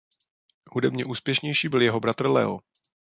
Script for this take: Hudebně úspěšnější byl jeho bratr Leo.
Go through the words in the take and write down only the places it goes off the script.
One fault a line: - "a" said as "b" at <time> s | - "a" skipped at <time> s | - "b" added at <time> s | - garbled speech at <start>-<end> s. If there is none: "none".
none